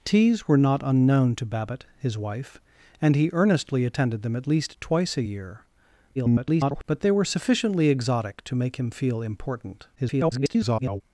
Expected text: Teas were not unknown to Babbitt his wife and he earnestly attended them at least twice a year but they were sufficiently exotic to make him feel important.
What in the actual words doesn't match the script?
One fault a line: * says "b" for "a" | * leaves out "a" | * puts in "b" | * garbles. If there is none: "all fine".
* garbles
* garbles